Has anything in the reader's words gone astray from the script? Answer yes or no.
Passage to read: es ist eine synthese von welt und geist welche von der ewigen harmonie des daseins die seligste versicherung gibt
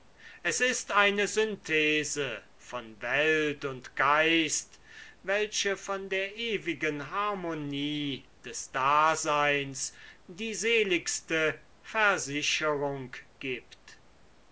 no